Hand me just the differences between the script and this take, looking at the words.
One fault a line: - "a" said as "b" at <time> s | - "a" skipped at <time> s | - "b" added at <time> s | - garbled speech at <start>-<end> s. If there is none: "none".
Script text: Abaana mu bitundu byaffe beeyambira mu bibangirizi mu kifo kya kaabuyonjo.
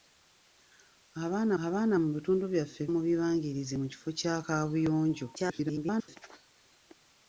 - "abaana" added at 1.6 s
- "beeyambira" skipped at 2.8 s
- garbled speech at 5.4-6.2 s